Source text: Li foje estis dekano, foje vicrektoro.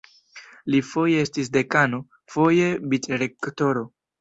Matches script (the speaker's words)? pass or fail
pass